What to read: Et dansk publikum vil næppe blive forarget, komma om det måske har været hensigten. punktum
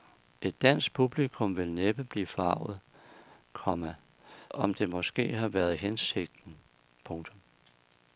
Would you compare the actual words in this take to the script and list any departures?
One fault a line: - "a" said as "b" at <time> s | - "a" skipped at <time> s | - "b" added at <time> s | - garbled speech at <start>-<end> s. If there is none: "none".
none